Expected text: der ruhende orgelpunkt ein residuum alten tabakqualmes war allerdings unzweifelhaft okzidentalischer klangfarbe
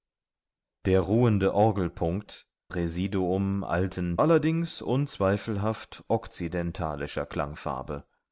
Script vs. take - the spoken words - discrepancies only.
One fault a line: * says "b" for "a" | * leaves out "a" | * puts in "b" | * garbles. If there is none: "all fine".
* leaves out "ein"
* leaves out "tabakqualmes war"